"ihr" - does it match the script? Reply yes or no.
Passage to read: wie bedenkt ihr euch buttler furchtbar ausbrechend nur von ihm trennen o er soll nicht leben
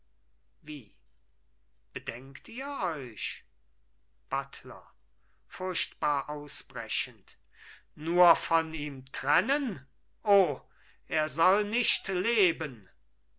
yes